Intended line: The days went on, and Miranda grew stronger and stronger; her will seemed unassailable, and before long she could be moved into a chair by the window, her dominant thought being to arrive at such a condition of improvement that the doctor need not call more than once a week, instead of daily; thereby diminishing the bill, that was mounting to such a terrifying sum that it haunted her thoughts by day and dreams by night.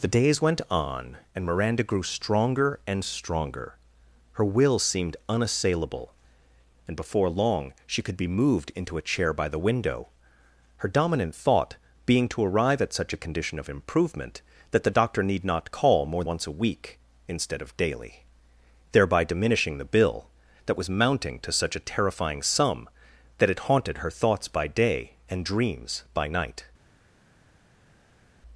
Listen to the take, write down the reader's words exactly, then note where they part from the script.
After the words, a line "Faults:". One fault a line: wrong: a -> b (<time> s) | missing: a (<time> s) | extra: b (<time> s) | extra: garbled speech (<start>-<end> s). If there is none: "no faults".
The days went on, and Miranda grew stronger and stronger; her will seemed unassailable, and before long she could be moved into a chair by the window, her dominant thought being to arrive at such a condition of improvement that the doctor need not call more once a week, instead of daily; thereby diminishing the bill, that was mounting to such a terrifying sum that it haunted her thoughts by day and dreams by night.
Faults:
missing: than (16.2 s)